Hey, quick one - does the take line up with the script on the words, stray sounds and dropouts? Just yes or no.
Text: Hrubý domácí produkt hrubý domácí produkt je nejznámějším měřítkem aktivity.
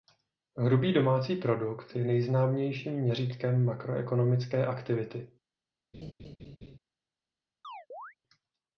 no